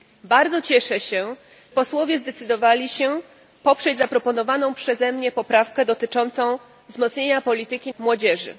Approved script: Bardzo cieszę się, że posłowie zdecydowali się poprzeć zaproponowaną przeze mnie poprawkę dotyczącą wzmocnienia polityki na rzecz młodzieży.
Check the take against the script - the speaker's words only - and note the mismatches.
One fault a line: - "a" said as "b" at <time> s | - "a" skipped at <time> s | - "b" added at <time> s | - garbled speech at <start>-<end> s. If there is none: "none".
- "że" skipped at 1.4 s
- "na rzecz" skipped at 7.9 s